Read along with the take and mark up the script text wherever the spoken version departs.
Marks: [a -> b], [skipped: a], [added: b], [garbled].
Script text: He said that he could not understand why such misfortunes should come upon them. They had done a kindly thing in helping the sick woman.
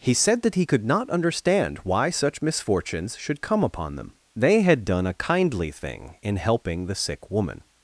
He said that he could not understand why such misfortunes should come upon them. They had done a kindly thing in helping the sick woman.